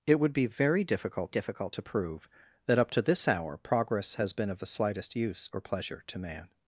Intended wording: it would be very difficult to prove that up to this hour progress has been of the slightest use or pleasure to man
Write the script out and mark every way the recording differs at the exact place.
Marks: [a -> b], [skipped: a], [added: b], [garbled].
it would be very difficult [added: difficult] to prove that up to this hour progress has been of the slightest use or pleasure to man